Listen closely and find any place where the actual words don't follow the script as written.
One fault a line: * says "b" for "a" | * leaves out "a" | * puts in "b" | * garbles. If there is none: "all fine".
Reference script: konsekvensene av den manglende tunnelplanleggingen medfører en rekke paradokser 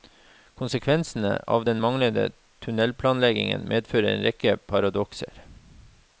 all fine